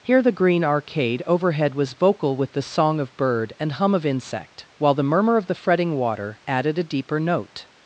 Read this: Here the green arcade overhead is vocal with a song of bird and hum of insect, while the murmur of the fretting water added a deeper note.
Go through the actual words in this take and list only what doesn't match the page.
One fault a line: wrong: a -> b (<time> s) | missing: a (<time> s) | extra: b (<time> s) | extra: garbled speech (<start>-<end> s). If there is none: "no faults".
wrong: is -> was (1.8 s)
wrong: a -> the (2.5 s)